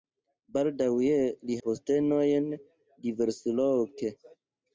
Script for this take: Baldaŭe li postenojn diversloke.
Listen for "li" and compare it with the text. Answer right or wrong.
right